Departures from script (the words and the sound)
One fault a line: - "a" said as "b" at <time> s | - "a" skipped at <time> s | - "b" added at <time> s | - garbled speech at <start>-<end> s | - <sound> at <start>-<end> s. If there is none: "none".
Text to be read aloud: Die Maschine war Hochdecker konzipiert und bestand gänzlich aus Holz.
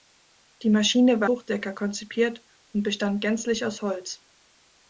none